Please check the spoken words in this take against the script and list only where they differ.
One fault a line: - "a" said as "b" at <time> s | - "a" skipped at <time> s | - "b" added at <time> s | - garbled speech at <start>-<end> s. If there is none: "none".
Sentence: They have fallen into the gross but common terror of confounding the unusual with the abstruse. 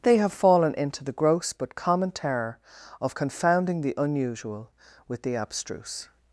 none